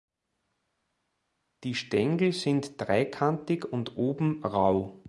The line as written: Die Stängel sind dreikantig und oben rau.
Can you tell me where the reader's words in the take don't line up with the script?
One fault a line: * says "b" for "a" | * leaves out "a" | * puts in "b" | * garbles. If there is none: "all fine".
all fine